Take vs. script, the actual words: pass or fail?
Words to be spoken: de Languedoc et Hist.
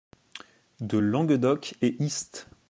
pass